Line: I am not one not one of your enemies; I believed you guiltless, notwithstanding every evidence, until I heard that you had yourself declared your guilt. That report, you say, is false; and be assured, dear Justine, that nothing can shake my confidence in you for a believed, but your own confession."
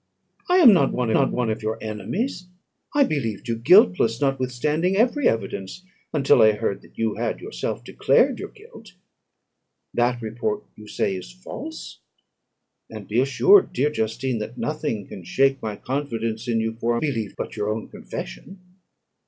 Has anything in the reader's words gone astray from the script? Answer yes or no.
no